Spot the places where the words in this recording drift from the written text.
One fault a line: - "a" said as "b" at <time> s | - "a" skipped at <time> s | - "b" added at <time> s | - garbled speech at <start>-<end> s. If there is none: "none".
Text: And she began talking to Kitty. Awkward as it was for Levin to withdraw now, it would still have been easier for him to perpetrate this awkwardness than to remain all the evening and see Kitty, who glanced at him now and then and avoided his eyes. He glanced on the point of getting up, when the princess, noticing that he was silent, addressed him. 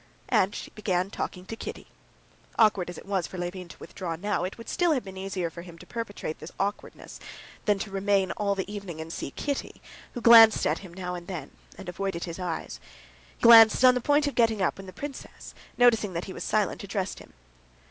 none